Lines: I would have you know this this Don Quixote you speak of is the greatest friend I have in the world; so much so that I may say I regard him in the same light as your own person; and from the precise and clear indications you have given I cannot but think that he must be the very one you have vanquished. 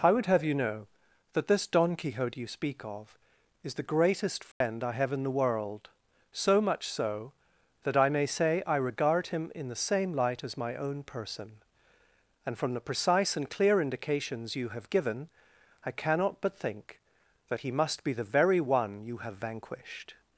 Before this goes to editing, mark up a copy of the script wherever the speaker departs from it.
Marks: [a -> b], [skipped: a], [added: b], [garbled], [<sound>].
I would have you know [this -> that] this Don Quixote you speak of is the greatest friend [dropout] I have in the world; so much so that I may say I regard him in the same light as [your -> my] own person; and from the precise and clear indications you have given I cannot but think that he must be the very one you have vanquished.